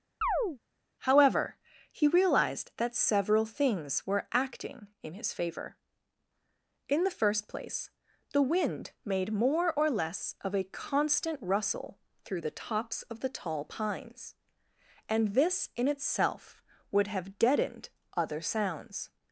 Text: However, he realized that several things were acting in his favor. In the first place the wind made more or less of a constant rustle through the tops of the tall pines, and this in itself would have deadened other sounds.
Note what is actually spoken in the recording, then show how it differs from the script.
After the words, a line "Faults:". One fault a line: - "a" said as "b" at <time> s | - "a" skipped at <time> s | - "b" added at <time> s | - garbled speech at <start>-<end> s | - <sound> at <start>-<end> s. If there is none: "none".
However, he realized that several things were acting in his favor. In the first place the wind made more or less of a constant rustle through the tops of the tall pines, and this in itself would have deadened other sounds.
Faults:
- chirp at 0.2-0.6 s